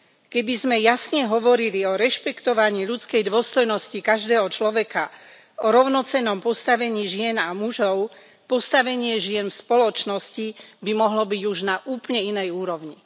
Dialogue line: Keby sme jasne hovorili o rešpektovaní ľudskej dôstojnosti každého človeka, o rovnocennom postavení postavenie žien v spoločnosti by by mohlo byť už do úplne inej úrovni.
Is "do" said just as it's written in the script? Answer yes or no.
no